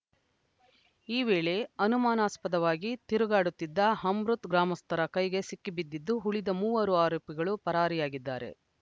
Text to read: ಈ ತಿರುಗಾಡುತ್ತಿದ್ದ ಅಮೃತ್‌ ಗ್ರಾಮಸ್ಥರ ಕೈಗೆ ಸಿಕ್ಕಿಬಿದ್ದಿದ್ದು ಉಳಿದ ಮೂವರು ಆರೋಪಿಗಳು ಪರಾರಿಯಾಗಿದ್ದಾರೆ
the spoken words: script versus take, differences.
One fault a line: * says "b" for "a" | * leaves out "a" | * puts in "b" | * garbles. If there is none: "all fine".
* puts in "ವೇಳೆ ಅನುಮಾನಾಸ್ಪದವಾಗಿ"